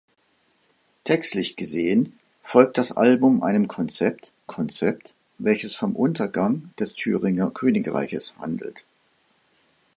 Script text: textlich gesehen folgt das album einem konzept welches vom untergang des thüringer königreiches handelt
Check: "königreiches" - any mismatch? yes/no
no